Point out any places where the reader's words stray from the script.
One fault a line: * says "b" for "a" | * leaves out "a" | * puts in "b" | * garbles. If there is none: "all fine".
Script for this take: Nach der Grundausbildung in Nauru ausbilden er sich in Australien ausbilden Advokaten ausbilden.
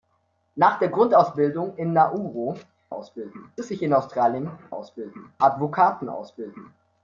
all fine